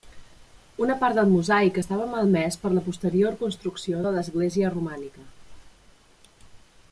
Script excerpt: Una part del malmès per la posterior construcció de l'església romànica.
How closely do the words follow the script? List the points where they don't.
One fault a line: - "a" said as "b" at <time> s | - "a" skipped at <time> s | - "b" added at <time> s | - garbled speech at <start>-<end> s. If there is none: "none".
- "mosaic estava" added at 1.3 s